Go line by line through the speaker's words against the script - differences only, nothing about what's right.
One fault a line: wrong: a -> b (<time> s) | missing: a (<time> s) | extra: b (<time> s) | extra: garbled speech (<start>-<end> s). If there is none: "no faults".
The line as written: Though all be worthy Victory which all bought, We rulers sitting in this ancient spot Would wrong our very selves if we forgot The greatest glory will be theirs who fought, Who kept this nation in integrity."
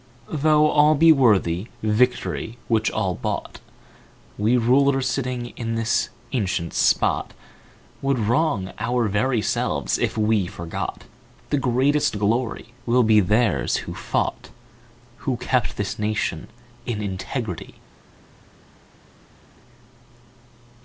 no faults